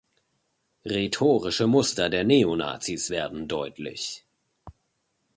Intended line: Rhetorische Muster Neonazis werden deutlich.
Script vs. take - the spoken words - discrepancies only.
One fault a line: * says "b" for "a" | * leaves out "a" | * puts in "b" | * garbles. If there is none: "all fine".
* puts in "der"